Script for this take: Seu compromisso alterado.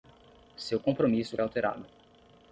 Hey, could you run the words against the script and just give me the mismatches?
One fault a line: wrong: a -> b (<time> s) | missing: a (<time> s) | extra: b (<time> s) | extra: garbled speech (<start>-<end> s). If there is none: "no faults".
no faults